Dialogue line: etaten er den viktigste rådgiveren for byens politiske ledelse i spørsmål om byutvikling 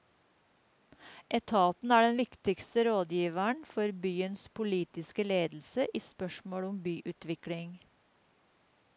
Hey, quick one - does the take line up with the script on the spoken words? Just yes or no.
yes